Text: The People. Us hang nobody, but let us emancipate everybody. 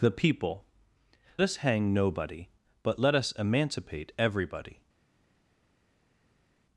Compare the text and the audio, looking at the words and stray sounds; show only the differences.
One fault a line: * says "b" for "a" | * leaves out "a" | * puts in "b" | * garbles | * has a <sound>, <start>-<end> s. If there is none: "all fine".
all fine